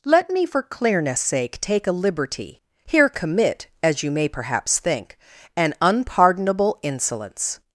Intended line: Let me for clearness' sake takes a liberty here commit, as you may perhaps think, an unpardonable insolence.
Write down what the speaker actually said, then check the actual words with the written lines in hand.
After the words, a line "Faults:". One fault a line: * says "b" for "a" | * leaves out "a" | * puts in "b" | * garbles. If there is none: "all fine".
Let me for clearness' sake take a liberty here commit, as you may perhaps think, an unpardonable insolence.
Faults:
* says "take" for "takes"